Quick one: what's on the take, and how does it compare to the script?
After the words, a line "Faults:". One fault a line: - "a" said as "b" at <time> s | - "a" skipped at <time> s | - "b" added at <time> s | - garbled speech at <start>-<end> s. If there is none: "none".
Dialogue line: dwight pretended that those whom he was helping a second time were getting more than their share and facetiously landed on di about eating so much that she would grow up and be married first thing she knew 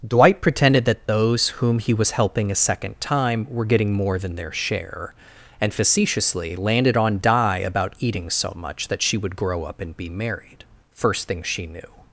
dwight pretended that those whom he was helping a second time were getting more than their share and facetiously landed on di about eating so much that she would grow up and be married first thing she knew
Faults:
none